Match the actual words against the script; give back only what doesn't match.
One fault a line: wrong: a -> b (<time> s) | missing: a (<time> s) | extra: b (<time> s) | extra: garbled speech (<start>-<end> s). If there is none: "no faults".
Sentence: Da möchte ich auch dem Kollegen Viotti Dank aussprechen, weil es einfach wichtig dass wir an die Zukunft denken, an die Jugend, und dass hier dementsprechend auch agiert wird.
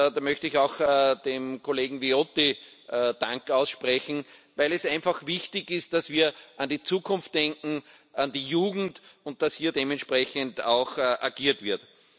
extra: ist (5.7 s)